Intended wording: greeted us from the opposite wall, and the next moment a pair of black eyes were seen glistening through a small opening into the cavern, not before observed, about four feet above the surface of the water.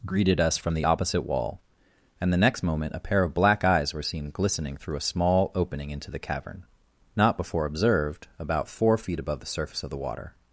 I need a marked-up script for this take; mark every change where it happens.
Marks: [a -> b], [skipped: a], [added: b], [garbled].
greeted us from the opposite wall, and the next moment a pair of black eyes were seen glistening through a small opening into the cavern, not before observed, about four feet above the surface of the water.